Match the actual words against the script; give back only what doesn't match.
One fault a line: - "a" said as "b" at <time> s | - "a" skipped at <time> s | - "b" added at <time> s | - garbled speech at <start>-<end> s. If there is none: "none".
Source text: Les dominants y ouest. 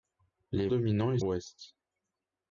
none